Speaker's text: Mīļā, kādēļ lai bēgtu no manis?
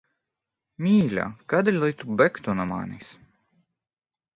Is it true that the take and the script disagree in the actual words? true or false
true